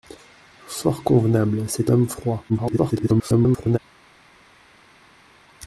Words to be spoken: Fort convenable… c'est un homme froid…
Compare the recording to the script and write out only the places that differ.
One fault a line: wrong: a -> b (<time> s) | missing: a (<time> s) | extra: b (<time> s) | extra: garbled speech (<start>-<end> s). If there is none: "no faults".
missing: un (1.9 s)
extra: garbled speech (2.5-3.8 s)